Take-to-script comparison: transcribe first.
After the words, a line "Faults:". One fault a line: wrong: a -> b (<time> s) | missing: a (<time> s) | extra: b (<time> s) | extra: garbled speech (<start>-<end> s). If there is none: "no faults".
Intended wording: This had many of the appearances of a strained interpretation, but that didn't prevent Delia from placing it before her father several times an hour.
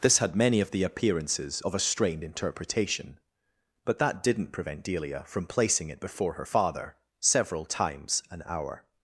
This had many of the appearances of a strained interpretation, but that didn't prevent Delia from placing it before her father several times an hour.
Faults:
no faults